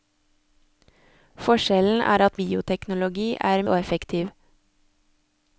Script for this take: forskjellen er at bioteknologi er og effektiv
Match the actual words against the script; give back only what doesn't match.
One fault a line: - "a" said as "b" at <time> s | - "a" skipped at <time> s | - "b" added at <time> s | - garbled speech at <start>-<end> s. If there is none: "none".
none